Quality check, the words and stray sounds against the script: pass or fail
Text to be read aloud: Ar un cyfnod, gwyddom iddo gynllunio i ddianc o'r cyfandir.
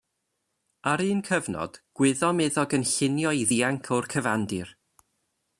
pass